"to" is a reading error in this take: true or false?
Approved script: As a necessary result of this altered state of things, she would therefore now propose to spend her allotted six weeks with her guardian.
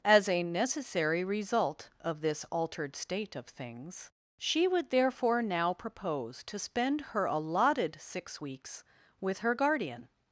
false